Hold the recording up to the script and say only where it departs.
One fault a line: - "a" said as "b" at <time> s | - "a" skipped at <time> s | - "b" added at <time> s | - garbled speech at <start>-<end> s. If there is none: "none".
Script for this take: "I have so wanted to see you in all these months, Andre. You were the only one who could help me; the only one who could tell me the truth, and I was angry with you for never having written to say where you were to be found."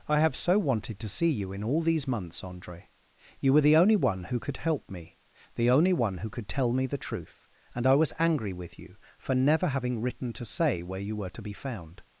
none